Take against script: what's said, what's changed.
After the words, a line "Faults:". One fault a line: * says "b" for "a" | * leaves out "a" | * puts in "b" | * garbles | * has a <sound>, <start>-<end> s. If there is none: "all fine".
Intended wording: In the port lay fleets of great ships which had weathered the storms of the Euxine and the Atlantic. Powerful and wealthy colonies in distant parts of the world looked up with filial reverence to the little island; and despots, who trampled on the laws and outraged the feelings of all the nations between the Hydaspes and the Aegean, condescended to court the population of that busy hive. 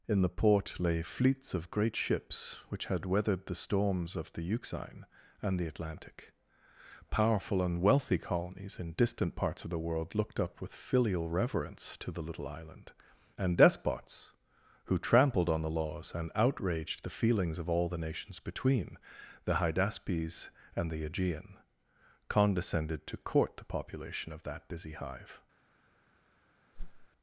In the port lay fleets of great ships which had weathered the storms of the Euxine and the Atlantic. Powerful and wealthy colonies in distant parts of the world looked up with filial reverence to the little island; and despots, who trampled on the laws and outraged the feelings of all the nations between the Hydaspes and the Aegean, condescended to court the population of that busy hive.
Faults:
* has a whoosh, 26.7-27.1 s